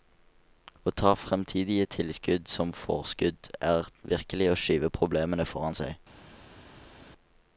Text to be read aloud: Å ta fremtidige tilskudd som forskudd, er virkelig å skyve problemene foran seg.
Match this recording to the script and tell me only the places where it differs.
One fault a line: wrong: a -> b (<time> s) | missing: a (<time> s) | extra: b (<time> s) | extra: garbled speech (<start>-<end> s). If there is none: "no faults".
no faults